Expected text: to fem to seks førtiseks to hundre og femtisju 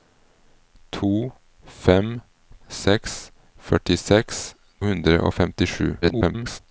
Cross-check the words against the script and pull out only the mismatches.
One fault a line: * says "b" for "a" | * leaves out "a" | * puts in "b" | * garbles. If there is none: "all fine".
* leaves out "to"
* leaves out "to"
* garbles